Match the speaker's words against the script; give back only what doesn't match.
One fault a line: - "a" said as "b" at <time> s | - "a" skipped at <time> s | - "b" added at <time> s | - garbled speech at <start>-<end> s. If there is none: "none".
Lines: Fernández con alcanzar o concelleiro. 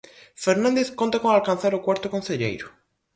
- "conta" added at 1.0 s
- "cuarto" added at 1.9 s